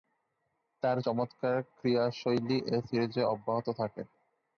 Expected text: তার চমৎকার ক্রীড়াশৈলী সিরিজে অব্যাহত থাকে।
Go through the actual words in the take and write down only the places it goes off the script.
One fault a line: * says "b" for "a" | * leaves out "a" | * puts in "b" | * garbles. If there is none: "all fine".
* puts in "এ"